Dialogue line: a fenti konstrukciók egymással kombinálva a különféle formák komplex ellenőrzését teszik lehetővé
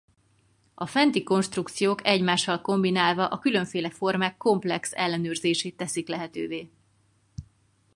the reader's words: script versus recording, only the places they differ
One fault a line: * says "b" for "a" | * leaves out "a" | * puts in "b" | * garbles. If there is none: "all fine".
all fine